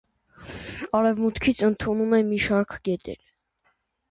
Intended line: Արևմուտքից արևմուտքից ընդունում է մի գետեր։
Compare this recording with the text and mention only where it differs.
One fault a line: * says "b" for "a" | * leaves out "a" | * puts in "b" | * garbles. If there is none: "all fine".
* leaves out "արևմուտքից"
* puts in "շարք"